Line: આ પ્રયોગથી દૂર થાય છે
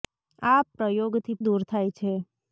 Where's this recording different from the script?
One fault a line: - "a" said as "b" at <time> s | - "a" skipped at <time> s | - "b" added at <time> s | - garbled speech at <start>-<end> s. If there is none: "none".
none